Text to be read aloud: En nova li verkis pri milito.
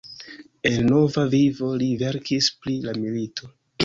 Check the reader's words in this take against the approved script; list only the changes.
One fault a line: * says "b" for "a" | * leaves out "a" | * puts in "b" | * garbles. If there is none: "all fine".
* puts in "vivo"
* puts in "la"